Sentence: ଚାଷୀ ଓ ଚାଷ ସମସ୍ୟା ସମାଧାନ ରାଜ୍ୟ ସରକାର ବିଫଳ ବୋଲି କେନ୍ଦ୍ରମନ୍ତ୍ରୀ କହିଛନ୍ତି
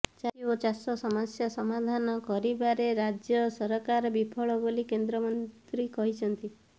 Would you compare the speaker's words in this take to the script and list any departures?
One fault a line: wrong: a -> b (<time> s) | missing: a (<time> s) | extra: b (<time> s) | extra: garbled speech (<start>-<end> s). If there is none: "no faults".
extra: କରିବାରେ (2.3 s)